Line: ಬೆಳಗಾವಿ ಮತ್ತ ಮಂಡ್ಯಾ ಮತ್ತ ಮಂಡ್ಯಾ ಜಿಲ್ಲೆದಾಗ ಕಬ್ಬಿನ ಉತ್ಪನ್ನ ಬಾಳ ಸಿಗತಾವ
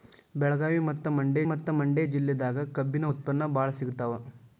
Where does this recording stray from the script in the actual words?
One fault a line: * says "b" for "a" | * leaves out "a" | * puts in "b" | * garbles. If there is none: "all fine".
all fine